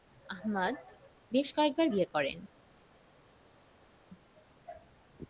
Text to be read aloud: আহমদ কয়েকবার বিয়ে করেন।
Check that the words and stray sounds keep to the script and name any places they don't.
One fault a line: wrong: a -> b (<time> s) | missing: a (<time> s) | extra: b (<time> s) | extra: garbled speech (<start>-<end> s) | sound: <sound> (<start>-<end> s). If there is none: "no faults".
extra: বেশ (1.3 s)